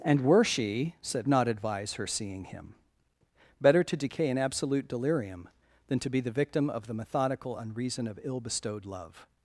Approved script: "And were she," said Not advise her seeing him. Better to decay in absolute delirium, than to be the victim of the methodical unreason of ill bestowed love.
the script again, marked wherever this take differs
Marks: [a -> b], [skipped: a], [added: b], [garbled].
"And were she," said Not advise her seeing him. Better to decay in absolute delirium, than to be the victim of the methodical unreason of ill bestowed love.